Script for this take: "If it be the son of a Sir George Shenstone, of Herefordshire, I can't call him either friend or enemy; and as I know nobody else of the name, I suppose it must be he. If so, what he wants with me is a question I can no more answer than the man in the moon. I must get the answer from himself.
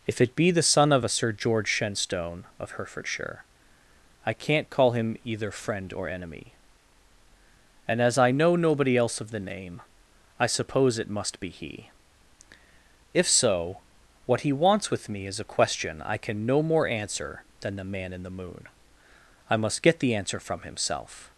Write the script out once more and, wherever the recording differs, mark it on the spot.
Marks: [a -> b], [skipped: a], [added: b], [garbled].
"If it be the son of a Sir George Shenstone, of Herefordshire, I can't call him either friend or enemy; and as I know nobody else of the name, I suppose it must be he. If so, what he wants with me is a question I can no more answer than the man in the moon. I must get the answer from himself.